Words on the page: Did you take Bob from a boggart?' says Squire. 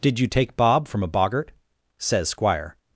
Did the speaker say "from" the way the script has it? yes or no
yes